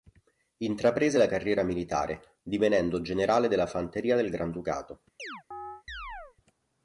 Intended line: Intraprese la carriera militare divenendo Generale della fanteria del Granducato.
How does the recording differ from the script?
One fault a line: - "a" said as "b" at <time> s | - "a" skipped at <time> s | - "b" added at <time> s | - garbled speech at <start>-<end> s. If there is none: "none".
none